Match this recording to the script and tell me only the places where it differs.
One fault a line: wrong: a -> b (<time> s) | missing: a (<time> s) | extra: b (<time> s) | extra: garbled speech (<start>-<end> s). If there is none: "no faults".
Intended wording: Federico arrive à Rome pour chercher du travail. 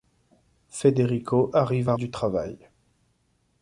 missing: Rome pour chercher (1.9 s)